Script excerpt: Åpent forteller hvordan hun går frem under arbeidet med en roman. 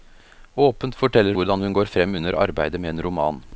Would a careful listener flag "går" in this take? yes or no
no